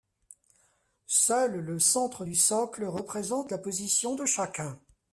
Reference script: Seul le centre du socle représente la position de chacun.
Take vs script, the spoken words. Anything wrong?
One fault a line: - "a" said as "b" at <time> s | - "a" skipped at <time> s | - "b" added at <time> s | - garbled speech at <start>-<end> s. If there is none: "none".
none